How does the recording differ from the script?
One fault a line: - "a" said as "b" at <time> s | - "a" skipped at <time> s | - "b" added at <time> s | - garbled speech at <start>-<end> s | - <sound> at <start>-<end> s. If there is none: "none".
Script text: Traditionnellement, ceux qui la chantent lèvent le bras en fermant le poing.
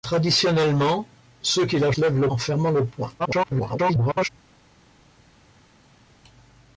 - "chantent" skipped at 1.9 s
- "bras" skipped at 2.3 s
- garbled speech at 3.2-4.3 s